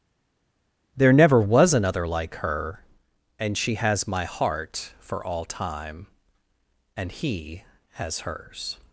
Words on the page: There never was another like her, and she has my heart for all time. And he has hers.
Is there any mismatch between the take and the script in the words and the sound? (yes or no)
no